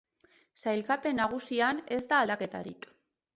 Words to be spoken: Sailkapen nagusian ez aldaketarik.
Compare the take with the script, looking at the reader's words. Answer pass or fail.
fail